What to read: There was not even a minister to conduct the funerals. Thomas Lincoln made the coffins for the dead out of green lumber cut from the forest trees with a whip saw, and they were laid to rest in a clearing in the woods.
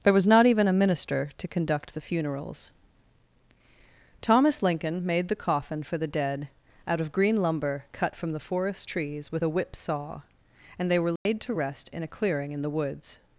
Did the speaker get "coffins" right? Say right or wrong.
wrong